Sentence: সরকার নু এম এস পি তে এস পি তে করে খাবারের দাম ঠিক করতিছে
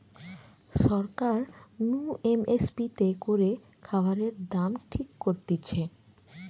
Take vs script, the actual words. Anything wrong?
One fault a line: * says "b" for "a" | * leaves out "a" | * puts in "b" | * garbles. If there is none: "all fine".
* leaves out "এস পি তে"